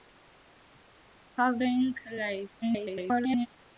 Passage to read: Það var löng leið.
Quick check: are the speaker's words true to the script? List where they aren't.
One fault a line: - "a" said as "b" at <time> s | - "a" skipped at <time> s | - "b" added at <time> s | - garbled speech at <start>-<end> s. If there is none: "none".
- "var" skipped at 1.6 s
- garbled speech at 2.6-3.5 s